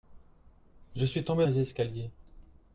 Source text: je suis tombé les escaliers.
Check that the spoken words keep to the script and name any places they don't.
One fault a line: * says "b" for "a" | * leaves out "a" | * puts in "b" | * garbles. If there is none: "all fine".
all fine